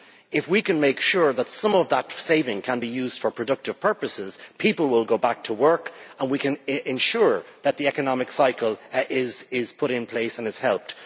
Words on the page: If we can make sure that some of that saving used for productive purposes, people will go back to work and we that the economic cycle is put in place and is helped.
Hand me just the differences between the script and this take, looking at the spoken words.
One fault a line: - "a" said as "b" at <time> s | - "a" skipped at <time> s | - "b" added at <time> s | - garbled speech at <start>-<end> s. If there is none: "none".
- "can be" added at 2.6 s
- "can ensure" added at 6.4 s